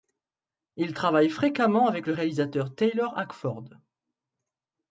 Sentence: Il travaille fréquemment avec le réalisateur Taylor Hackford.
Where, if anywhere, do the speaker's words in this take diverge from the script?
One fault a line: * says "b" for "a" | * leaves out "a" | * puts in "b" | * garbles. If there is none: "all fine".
all fine